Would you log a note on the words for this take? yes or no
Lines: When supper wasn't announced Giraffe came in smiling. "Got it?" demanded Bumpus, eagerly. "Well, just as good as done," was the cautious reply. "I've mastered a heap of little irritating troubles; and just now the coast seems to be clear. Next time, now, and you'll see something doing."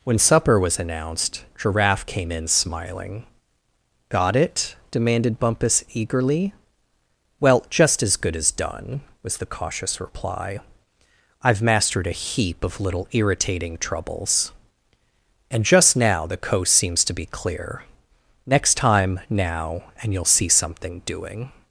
yes